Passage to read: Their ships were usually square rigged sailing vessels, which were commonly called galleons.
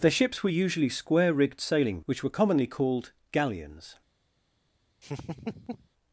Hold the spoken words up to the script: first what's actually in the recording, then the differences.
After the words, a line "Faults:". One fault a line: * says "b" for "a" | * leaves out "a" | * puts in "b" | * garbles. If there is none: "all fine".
Their ships were usually square rigged sailing which were commonly called galleons.
Faults:
* leaves out "vessels"